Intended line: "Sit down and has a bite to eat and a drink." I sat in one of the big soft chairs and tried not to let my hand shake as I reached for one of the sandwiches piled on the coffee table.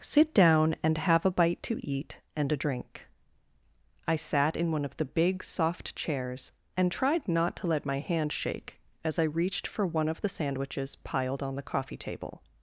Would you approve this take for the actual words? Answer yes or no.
no